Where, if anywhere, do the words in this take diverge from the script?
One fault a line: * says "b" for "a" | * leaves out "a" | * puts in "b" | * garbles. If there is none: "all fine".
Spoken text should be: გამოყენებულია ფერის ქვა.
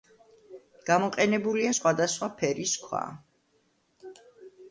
* puts in "სხვადასხვა"